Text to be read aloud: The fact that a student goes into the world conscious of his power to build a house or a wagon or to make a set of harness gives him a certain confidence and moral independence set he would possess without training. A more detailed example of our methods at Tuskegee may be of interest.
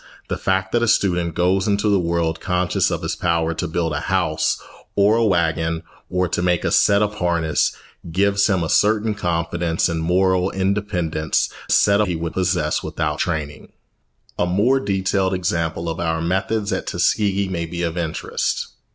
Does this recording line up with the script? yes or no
yes